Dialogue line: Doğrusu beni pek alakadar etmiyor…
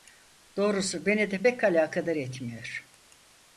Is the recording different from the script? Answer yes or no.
yes